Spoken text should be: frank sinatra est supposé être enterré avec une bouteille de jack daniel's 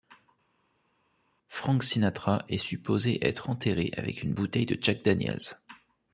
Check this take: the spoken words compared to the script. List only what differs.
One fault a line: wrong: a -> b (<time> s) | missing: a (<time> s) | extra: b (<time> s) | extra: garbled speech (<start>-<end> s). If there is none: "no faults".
no faults